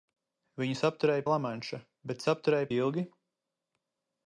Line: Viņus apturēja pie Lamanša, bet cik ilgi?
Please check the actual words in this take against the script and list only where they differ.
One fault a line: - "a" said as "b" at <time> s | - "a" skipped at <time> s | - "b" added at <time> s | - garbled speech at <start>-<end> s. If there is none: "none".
- "pie" skipped at 1.2 s
- "cik" said as "apturēja" at 2.3 s